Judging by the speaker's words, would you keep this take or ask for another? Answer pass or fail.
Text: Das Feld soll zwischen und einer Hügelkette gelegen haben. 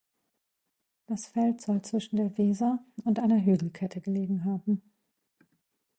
fail